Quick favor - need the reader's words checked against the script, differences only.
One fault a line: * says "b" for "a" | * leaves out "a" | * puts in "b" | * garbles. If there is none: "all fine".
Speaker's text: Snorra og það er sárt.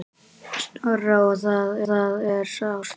* puts in "það"